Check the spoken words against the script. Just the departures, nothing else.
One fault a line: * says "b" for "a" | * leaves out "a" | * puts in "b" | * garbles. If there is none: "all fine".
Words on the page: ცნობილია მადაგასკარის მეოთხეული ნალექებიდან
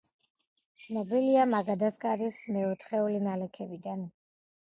all fine